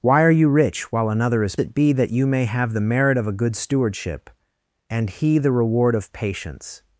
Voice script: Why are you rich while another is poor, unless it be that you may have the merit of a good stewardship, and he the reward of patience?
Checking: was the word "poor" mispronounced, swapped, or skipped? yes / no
yes